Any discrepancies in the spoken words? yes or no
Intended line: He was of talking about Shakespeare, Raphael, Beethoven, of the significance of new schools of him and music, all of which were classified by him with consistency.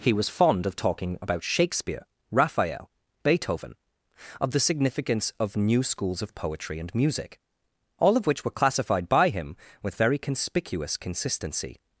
yes